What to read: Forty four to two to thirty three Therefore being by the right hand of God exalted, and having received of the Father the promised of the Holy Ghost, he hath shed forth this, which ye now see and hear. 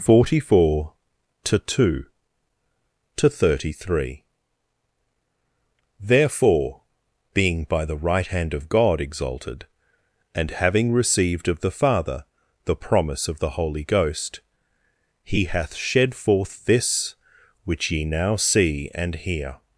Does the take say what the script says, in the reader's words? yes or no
no